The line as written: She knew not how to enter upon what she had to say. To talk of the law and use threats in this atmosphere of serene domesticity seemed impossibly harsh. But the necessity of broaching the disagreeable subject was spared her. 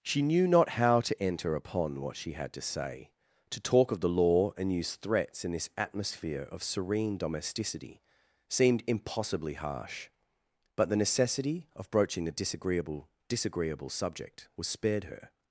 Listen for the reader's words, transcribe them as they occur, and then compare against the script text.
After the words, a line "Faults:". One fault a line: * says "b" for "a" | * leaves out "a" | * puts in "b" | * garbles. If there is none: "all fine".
She knew not how to enter upon what she had to say. To talk of the law and use threats in this atmosphere of serene domesticity seemed impossibly harsh. But the necessity of broaching the disagreeable disagreeable subject was spared her.
Faults:
* puts in "disagreeable"